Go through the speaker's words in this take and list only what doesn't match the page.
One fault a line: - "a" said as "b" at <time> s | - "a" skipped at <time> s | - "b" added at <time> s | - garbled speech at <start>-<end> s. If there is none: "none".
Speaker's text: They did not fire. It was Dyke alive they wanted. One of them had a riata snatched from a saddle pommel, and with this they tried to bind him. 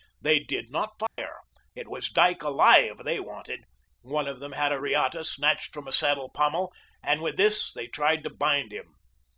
none